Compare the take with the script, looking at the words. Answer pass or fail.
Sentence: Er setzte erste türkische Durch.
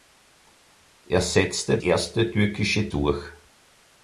pass